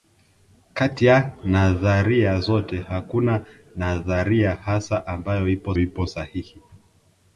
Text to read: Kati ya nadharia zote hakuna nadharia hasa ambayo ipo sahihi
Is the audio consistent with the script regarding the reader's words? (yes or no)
no